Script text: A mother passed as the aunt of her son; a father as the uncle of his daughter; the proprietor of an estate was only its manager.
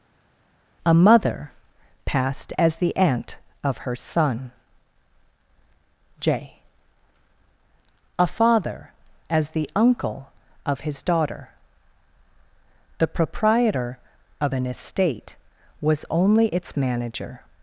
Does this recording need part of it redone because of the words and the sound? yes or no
yes